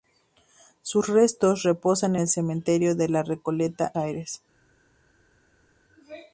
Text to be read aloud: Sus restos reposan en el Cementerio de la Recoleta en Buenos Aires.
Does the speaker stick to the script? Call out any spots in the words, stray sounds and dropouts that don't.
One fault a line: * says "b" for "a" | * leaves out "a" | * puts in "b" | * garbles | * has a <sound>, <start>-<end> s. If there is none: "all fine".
* leaves out "en"
* leaves out "en Buenos"